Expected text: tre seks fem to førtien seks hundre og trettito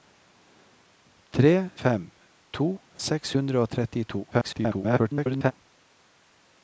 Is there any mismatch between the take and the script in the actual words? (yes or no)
yes